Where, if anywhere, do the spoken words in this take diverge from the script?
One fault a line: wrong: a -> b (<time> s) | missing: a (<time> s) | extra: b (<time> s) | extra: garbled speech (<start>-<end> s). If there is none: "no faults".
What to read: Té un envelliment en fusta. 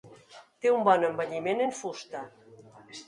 extra: bon (0.9 s)